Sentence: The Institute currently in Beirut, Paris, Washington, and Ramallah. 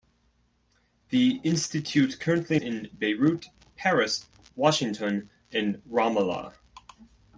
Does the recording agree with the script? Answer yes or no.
yes